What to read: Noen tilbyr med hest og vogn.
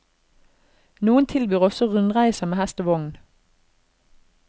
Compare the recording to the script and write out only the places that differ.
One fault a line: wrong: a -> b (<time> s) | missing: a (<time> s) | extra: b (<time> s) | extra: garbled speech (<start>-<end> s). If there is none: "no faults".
extra: også rundreiser (1.7 s)